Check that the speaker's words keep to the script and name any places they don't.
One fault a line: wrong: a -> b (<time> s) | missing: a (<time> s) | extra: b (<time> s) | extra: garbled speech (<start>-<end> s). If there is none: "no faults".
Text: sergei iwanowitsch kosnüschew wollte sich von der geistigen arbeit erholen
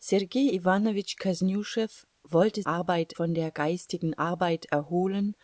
wrong: sich -> arbeit (2.6 s)